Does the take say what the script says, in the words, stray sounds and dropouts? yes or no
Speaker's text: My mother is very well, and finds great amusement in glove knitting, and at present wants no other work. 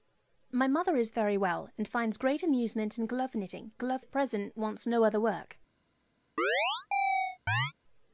no